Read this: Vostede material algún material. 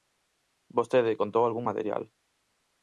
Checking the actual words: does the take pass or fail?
fail